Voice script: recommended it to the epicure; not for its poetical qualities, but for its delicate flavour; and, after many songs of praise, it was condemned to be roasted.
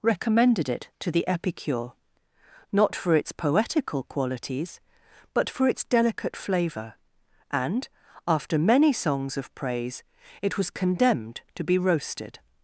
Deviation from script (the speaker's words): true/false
false